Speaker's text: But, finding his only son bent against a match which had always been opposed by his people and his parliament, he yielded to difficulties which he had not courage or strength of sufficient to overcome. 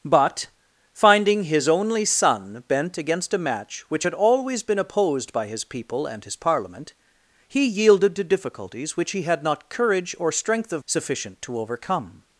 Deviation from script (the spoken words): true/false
false